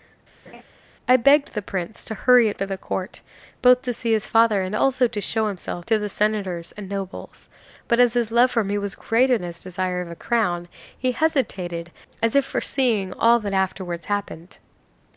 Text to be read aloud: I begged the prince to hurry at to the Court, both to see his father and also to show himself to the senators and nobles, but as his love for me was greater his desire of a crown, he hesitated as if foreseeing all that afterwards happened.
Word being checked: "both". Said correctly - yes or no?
yes